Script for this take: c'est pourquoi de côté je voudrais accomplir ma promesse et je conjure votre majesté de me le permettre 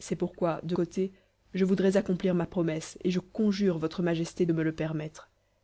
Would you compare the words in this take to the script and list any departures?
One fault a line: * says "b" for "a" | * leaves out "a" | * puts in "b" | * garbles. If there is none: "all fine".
all fine